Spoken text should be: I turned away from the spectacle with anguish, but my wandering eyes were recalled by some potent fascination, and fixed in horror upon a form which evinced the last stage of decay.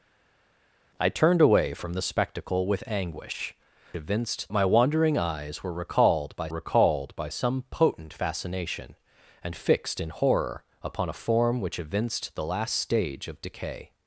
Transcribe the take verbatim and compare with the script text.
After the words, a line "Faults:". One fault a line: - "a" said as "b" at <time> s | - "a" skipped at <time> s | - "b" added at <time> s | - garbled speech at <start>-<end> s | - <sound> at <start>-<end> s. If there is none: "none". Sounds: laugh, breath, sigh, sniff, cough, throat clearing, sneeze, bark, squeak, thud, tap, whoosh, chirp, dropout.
I turned away from the spectacle with anguish, evinced my wandering eyes were recalled by recalled by some potent fascination, and fixed in horror upon a form which evinced the last stage of decay.
Faults:
- "but" said as "evinced" at 3.9 s
- "recalled by" added at 6.5 s